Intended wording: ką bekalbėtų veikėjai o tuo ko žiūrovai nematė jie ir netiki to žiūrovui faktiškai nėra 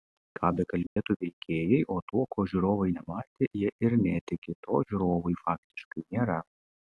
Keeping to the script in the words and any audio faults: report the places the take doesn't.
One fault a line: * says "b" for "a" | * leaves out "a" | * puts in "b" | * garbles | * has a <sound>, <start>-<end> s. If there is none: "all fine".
* has a dropout, 0.9-1.0 s